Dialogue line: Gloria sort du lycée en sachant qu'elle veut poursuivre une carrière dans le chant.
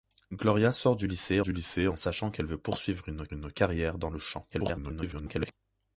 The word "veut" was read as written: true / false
true